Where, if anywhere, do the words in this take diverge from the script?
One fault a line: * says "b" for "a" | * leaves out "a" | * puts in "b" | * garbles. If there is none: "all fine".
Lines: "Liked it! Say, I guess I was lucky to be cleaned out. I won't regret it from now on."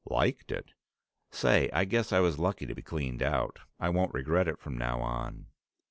all fine